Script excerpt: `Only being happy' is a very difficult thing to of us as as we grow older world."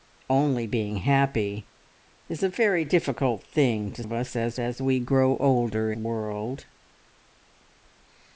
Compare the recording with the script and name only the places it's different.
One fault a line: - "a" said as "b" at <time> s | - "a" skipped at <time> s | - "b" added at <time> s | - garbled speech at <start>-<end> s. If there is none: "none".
none